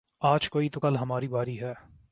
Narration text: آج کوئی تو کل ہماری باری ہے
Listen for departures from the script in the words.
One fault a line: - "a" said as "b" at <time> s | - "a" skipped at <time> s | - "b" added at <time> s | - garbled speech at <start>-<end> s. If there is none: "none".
none